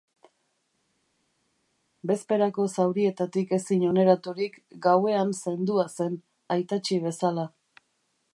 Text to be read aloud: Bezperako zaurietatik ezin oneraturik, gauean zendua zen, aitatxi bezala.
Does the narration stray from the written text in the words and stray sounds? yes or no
no